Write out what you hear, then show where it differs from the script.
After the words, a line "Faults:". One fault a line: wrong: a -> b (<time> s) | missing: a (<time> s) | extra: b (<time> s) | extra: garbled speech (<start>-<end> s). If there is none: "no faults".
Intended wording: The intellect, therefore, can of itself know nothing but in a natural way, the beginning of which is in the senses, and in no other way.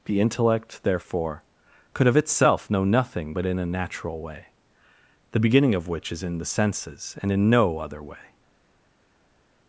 The intellect, therefore, could of itself know nothing but in a natural way, the beginning of which is in the senses, and in no other way.
Faults:
wrong: can -> could (1.9 s)